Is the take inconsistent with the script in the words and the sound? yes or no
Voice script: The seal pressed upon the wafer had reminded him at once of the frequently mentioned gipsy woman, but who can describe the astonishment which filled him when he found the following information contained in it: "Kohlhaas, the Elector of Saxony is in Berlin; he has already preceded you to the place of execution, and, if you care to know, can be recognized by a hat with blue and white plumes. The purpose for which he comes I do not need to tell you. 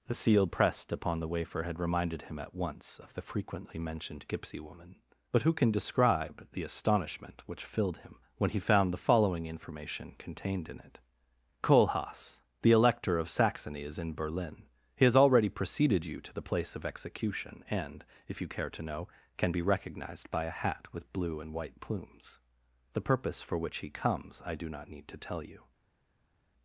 no